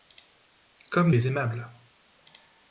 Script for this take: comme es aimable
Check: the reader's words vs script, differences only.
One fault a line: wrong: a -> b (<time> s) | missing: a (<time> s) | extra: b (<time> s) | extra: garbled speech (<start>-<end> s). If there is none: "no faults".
no faults